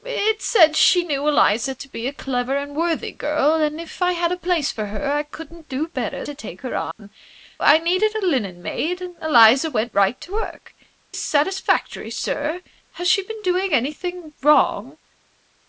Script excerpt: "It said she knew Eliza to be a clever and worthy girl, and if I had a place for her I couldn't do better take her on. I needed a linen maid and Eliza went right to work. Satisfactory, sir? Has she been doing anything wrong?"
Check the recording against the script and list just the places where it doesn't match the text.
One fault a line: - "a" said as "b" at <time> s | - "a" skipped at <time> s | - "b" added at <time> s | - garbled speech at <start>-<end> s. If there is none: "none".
none